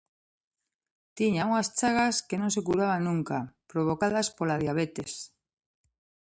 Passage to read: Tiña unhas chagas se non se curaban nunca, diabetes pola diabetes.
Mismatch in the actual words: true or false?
true